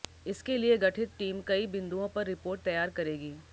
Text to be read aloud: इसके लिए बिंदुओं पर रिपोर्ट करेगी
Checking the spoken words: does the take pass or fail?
fail